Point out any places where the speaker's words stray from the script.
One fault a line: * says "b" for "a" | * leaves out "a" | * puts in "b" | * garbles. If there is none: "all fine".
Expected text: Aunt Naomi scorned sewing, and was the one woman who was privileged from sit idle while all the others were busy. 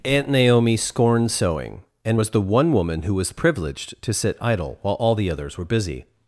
* says "to" for "from"